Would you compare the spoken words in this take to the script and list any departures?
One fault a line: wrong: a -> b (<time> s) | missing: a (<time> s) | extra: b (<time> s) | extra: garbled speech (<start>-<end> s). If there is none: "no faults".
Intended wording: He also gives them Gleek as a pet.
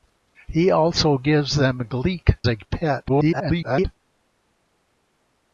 missing: as (2.4 s)
extra: garbled speech (3.1-3.9 s)